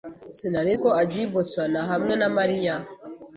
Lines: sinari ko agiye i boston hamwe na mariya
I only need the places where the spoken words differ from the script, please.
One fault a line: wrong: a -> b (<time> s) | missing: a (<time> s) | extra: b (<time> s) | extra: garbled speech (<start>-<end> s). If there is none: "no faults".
no faults